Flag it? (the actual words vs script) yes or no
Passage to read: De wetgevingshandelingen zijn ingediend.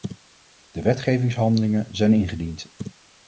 no